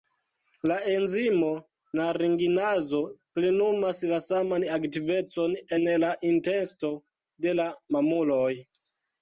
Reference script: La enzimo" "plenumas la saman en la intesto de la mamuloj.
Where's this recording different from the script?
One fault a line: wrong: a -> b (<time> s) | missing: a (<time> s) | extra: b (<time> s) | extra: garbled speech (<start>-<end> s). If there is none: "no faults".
extra: naringinazo (2.0 s)
extra: aktivecon (4.8 s)